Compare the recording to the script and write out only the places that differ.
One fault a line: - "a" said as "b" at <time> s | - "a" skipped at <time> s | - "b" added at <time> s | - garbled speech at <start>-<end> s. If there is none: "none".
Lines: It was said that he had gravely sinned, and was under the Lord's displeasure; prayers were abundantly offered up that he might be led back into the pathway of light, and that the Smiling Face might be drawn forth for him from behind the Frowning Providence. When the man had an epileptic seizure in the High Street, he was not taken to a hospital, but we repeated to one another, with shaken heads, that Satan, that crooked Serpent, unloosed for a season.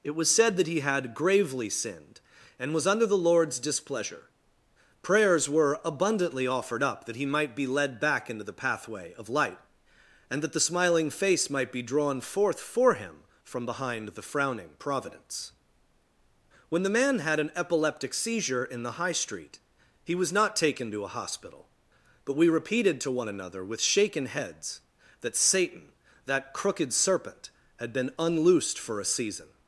- "had been" added at 27.8 s